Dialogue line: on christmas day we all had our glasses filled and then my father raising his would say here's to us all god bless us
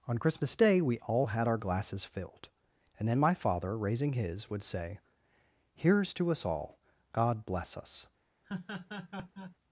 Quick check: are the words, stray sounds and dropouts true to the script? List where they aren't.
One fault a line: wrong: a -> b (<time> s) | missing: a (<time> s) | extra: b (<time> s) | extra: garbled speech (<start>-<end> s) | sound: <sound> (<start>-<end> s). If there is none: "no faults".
sound: laugh (8.4-9.6 s)